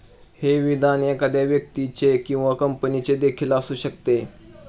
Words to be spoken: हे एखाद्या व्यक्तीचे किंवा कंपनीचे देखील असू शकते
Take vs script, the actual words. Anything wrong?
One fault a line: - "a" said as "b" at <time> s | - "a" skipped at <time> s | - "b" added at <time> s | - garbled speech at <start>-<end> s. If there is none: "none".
- "विधान" added at 0.6 s